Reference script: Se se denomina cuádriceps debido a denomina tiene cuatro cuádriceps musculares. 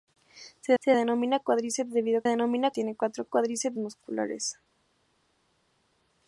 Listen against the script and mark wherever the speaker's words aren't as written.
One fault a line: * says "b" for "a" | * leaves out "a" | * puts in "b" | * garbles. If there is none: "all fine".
all fine